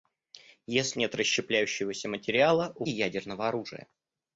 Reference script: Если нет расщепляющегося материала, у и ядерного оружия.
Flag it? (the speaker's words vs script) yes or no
no